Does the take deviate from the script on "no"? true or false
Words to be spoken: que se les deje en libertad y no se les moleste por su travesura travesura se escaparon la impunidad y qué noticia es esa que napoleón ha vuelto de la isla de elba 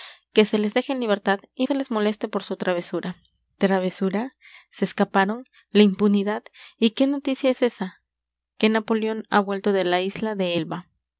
true